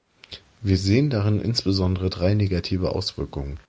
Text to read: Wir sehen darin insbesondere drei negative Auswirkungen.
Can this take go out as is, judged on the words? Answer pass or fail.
pass